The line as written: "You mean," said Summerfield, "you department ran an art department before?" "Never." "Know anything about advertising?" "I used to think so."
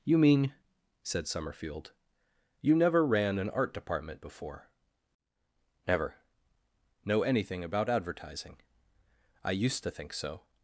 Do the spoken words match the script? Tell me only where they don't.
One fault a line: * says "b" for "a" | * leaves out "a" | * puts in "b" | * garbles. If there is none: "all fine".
* says "never" for "department"